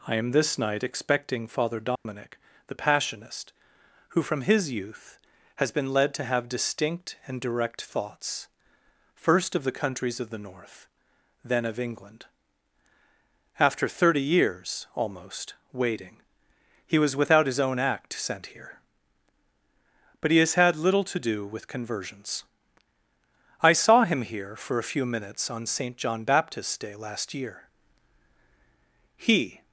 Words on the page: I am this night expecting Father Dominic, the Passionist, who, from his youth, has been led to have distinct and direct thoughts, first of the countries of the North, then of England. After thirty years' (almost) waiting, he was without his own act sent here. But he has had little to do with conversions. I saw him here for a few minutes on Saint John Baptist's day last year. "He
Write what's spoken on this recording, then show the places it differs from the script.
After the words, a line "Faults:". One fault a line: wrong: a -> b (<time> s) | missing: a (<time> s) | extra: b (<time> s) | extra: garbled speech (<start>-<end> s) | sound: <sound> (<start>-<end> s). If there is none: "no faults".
I am this night expecting Father Dominic, the Passionist, who, from his youth, has been led to have distinct and direct thoughts, first of the countries of the North, then of England. After thirty years' (almost) waiting, he was without his own act sent here. But he has had little to do with conversions. I saw him here for a few minutes on Saint John Baptist's day last year. "He
Faults:
sound: dropout (2.0-2.1 s)